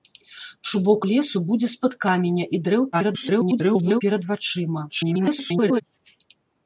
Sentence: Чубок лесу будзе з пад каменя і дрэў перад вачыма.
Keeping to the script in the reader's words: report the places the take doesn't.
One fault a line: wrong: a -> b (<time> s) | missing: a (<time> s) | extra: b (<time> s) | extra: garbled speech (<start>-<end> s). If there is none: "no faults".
extra: garbled speech (2.9-4.0 s)
extra: garbled speech (4.9-5.8 s)